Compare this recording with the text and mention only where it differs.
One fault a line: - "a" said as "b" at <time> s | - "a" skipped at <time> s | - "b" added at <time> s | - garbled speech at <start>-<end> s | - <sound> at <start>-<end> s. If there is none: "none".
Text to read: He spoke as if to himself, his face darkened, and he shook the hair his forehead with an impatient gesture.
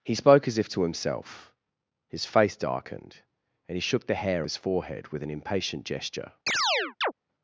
- chirp at 6.5-7.1 s